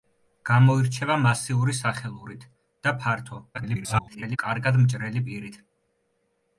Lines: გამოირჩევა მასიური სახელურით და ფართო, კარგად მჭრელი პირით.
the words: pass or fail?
fail